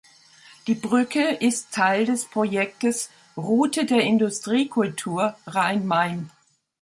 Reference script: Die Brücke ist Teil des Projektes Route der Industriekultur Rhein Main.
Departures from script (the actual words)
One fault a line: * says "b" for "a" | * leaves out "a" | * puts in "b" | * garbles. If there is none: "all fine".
all fine